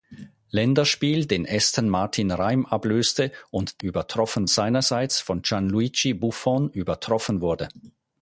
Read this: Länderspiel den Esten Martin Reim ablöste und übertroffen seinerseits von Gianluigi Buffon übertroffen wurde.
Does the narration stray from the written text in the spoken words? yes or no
no